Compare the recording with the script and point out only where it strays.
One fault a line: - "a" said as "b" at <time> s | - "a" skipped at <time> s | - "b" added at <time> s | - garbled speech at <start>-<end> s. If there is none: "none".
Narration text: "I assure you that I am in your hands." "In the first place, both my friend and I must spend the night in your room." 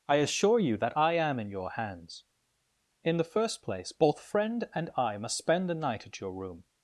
- "my" skipped at 4.2 s
- "in" said as "at" at 6.0 s